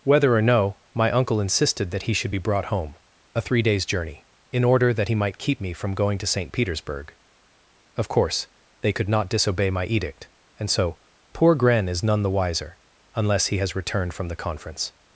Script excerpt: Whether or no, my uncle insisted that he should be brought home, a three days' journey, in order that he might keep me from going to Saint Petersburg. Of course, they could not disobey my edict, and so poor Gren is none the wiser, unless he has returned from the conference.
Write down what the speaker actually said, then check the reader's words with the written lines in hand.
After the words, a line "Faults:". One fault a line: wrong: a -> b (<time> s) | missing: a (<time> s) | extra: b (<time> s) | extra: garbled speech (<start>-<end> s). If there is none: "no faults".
Whether or no, my uncle insisted that he should be brought home, a three days' journey, in order that he might keep me from going to Saint Petersburg. Of course, they could not disobey my edict, and so poor Gren is none the wiser, unless he has returned from the conference.
Faults:
no faults